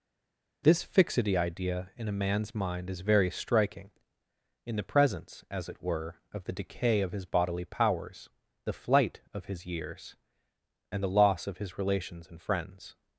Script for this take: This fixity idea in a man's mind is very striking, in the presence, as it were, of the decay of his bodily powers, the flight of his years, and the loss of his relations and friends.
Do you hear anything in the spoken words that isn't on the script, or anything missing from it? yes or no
no